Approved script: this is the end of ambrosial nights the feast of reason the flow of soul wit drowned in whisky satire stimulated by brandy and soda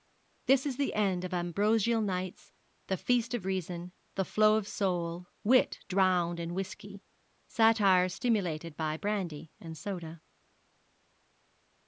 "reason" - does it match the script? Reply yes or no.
yes